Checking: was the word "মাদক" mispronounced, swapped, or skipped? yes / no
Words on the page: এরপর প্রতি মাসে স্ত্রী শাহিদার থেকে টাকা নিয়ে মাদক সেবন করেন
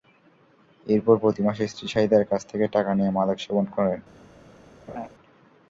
no